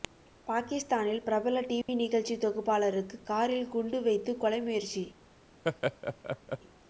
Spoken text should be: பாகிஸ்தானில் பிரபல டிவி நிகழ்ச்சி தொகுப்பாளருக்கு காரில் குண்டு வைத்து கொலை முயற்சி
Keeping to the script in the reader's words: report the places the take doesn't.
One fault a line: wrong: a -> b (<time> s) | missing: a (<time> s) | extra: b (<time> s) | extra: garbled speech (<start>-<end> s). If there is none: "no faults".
no faults